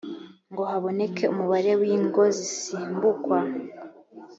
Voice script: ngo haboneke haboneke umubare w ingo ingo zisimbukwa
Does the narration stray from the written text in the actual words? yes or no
yes